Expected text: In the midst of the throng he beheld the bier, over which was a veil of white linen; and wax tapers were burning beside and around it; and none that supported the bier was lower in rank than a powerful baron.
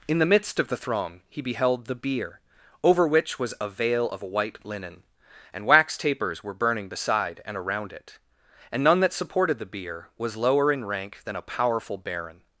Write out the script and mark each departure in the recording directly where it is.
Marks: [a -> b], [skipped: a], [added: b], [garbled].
In the midst of the throng he beheld the bier, over which was a veil of white linen; and wax tapers were burning beside and around it; and none that supported the bier was lower in rank than a powerful baron.